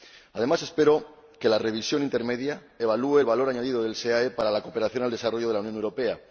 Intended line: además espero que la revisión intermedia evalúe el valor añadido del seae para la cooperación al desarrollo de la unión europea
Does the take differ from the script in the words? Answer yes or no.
no